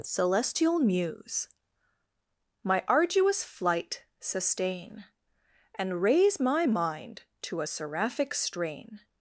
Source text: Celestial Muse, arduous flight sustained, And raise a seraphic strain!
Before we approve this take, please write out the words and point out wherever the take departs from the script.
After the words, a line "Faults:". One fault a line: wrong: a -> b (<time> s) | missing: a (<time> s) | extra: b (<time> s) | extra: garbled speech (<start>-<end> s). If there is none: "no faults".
Celestial Muse, my arduous flight sustain, And raise my mind to a seraphic strain!
Faults:
extra: my (2.6 s)
wrong: sustained -> sustain (4.2 s)
extra: my mind to (6.4 s)